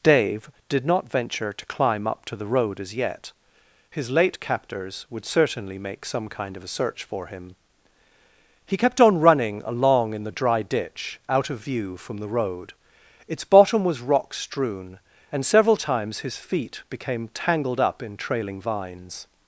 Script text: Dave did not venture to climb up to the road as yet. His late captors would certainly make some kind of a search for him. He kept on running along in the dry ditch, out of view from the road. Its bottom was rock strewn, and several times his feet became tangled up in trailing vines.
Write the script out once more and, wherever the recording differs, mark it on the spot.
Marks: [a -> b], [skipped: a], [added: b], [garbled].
Dave did not venture to climb up to the road as yet. His late captors would certainly make some kind of a search for him. He kept on running along in the dry ditch, out of view from the road. Its bottom was rock strewn, and several times his feet became tangled up in trailing vines.